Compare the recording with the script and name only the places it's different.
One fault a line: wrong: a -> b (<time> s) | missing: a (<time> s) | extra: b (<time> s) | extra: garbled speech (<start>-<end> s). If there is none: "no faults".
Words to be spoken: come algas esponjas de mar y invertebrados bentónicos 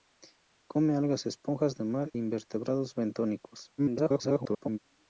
missing: y (2.1 s)
extra: garbled speech (3.8-4.8 s)